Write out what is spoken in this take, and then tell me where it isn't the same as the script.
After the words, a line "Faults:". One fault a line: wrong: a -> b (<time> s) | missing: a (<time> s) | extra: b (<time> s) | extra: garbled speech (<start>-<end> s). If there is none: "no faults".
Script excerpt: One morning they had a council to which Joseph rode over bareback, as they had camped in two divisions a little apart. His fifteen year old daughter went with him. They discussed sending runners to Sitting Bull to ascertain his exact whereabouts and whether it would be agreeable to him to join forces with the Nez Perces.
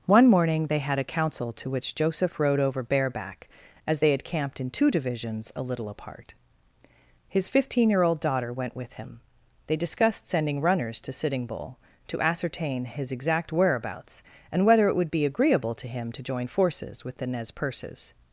One morning they had a council to which Joseph rode over bareback, as they had camped in two divisions a little apart. His fifteen year old daughter went with him. They discussed sending runners to Sitting Bull to ascertain his exact whereabouts and whether it would be agreeable to him to join forces with the Nez Perces.
Faults:
no faults